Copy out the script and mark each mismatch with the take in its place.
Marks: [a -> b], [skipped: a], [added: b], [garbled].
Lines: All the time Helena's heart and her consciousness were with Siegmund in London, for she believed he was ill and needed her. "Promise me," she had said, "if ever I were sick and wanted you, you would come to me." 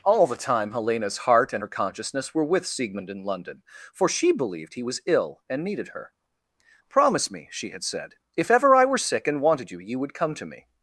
All the time Helena's heart and her consciousness were with Siegmund in London, for she believed he was ill and needed her. "Promise me," she had said, "if ever I were sick and wanted you, you would come to me."